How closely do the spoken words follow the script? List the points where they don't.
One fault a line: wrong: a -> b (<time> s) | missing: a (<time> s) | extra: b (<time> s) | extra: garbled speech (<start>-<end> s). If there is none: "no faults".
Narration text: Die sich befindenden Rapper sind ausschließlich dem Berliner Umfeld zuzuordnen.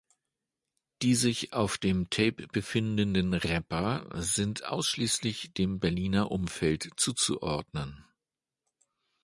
extra: auf dem Tape (1.5 s)